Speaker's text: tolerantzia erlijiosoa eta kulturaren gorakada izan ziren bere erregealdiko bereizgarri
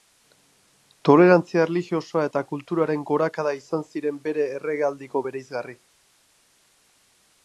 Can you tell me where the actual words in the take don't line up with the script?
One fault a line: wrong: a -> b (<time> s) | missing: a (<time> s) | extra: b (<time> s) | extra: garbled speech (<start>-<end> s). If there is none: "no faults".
no faults